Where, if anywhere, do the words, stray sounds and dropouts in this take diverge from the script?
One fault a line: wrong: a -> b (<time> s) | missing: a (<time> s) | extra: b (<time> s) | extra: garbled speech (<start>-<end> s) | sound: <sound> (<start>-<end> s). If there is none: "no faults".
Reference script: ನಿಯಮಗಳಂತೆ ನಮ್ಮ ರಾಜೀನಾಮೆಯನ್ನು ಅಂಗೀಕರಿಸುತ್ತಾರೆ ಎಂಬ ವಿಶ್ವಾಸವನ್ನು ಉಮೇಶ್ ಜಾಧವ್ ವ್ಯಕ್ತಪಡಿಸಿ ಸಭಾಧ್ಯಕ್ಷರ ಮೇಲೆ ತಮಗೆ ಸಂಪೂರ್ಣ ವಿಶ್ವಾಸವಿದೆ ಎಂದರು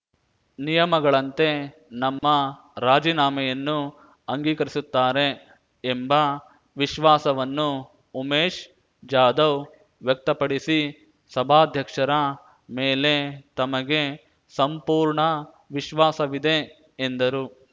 sound: dropout (2.2-2.2 s)